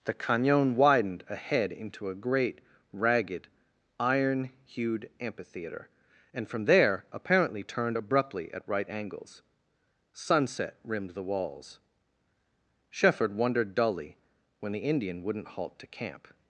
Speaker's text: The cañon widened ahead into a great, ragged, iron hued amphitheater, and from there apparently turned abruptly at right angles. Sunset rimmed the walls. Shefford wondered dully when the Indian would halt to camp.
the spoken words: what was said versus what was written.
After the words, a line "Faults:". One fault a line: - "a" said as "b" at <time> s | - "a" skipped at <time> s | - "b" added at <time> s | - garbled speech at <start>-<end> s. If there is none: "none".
The cañon widened ahead into a great, ragged, iron hued amphitheater, and from there apparently turned abruptly at right angles. Sunset rimmed the walls. Shefford wondered dully when the Indian wouldn't halt to camp.
Faults:
- "would" said as "wouldn't" at 15.2 s